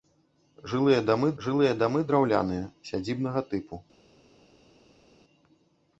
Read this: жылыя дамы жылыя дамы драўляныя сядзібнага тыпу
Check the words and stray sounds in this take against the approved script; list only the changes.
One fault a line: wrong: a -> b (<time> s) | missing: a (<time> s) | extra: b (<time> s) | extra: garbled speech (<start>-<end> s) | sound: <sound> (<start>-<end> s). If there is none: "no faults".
no faults